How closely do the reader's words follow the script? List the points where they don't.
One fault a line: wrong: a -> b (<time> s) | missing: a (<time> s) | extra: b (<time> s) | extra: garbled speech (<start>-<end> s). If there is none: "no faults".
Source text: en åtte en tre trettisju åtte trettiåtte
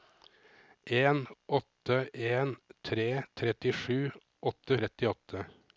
no faults